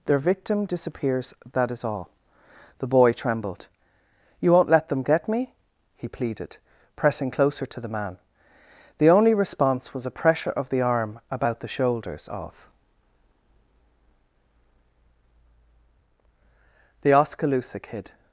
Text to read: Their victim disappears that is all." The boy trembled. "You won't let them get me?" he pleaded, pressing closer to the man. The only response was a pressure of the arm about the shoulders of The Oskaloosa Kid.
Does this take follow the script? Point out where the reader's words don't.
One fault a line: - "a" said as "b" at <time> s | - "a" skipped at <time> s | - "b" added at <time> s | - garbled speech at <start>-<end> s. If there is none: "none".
none